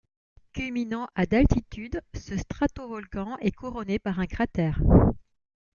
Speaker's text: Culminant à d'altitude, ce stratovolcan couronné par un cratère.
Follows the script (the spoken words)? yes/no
no